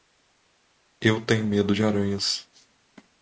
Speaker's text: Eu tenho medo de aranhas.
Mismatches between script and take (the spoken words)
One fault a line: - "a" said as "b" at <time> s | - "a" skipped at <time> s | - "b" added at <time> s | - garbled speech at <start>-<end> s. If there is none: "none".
none